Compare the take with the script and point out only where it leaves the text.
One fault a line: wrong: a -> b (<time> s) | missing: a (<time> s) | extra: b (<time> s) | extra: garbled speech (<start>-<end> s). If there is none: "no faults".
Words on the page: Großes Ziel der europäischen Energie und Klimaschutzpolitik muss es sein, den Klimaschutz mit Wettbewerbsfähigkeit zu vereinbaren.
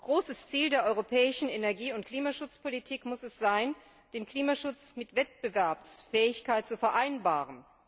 no faults